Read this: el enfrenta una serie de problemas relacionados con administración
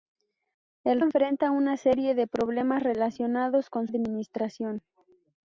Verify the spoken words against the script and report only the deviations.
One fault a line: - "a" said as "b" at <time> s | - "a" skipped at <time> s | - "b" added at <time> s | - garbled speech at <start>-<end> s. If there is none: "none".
none